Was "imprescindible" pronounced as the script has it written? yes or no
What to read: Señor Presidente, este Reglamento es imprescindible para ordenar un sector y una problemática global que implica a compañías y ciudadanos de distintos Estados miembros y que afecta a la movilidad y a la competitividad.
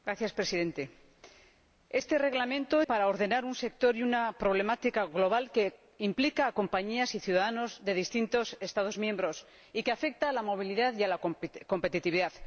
no